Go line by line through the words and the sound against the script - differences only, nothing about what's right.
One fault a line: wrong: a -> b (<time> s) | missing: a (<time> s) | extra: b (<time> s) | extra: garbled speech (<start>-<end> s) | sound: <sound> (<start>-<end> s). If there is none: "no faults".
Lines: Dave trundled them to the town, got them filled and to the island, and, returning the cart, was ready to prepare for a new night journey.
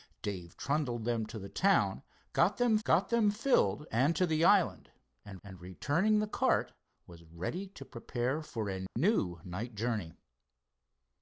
extra: got them (2.8 s)
extra: and (5.4 s)
sound: dropout (8.9-9.0 s)